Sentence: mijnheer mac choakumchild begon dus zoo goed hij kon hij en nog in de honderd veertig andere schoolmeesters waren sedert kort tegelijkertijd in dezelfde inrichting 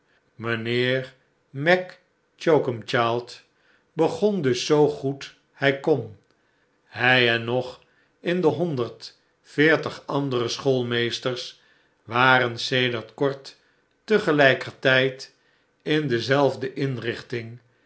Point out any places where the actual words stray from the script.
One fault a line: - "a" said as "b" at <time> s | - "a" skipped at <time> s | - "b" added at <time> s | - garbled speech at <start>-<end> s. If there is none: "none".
none